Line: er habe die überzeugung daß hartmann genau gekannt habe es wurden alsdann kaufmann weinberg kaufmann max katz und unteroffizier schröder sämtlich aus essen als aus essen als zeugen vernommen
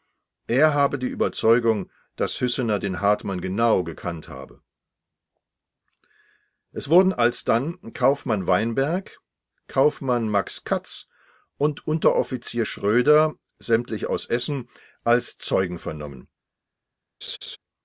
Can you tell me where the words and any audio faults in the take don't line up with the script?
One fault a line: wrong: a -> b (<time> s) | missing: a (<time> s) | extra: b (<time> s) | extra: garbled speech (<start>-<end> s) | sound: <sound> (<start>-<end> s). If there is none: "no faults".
extra: hüssener den (2.4 s)
missing: aus essen als (15.4 s)
sound: laugh (17.2-17.6 s)